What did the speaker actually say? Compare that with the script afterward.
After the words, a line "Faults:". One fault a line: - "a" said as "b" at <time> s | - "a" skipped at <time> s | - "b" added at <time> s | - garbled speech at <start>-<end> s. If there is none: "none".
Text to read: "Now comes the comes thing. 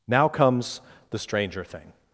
"Now comes the stranger thing.
Faults:
- "comes" said as "stranger" at 1.2 s